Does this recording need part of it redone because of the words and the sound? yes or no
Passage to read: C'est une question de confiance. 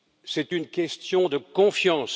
no